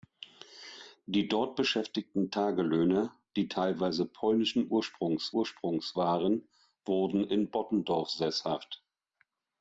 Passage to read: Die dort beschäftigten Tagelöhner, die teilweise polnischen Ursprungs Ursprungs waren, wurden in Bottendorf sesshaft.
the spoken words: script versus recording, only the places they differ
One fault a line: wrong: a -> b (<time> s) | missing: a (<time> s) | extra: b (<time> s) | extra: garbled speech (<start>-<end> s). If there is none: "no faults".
no faults